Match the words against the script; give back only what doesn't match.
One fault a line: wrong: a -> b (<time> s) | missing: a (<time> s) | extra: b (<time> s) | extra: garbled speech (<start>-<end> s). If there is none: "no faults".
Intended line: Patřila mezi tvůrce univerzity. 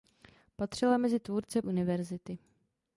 no faults